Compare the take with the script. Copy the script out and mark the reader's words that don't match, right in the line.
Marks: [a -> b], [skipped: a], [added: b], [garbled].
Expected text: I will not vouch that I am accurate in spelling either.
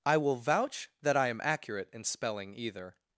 I will [skipped: not] vouch that I am accurate in spelling either.